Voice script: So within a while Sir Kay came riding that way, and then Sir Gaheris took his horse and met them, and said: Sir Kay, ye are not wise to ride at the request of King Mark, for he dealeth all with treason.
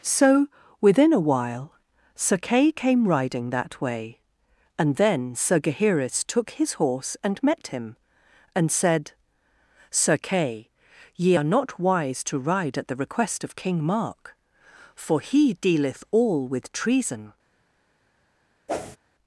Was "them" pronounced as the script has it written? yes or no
no